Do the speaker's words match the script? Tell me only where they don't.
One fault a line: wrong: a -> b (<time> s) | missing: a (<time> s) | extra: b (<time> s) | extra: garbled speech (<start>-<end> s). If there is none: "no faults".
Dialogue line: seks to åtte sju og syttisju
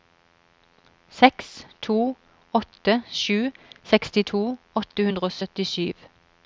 extra: sekstito åtte hundre (3.9 s)